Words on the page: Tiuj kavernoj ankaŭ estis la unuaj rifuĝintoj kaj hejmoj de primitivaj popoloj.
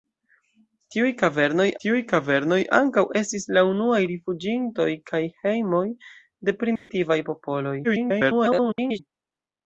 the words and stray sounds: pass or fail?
fail